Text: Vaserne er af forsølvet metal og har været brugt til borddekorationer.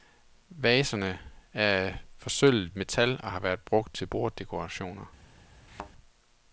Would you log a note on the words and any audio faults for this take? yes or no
yes